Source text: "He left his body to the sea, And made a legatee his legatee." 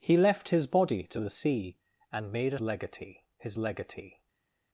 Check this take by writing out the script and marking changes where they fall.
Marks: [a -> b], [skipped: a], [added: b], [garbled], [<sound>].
"He left his body to the sea, And made a legatee his legatee."